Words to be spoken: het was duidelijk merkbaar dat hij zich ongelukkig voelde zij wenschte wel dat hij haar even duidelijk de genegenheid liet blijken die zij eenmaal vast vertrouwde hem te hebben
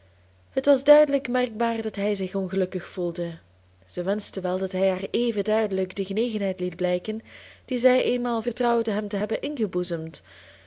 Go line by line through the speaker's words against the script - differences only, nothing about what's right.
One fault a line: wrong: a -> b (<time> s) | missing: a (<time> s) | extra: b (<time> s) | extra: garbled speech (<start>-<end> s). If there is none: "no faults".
missing: vast (8.4 s)